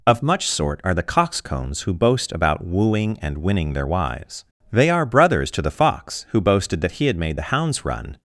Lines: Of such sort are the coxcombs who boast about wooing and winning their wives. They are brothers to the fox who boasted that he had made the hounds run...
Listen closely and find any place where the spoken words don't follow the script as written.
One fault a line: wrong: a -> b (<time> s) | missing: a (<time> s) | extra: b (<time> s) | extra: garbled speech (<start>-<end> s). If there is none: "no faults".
wrong: such -> much (0.2 s)